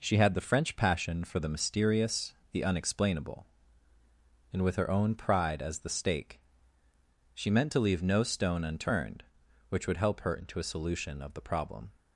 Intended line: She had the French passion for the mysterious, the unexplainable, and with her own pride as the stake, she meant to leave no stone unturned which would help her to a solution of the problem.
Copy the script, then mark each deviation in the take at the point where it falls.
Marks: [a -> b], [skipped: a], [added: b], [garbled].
She had the French passion for the mysterious, the unexplainable, and with her own pride as the stake, she meant to leave no stone unturned which would help her [to -> into] a solution of the problem.